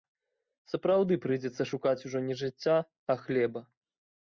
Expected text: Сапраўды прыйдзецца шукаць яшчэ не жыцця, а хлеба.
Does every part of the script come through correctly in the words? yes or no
no